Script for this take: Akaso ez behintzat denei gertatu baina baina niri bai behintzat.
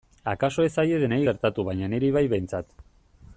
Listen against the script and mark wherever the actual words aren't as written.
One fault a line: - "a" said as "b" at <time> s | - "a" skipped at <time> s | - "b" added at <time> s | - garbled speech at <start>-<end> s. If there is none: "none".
- "behintzat" said as "zaie" at 0.8 s
- "baina" skipped at 1.9 s